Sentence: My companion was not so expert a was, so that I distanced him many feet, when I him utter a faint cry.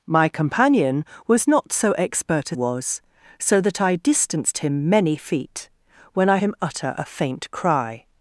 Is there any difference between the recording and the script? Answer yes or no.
no